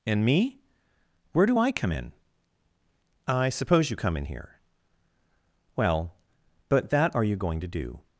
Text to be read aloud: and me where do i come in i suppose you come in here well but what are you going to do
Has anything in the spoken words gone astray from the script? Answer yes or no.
yes